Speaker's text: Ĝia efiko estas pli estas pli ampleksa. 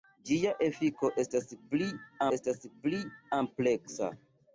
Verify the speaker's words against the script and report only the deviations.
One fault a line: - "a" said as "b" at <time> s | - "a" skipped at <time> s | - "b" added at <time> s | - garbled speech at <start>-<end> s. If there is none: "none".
none